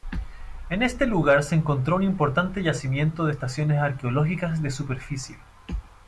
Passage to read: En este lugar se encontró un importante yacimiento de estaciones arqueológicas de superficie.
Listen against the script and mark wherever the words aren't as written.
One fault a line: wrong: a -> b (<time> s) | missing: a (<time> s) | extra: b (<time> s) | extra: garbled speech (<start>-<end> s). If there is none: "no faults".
no faults